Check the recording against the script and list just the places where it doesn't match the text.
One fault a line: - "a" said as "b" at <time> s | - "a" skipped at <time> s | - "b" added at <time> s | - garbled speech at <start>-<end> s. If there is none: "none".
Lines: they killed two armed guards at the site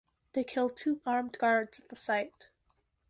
none